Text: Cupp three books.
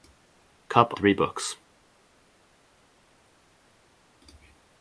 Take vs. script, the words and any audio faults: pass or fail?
pass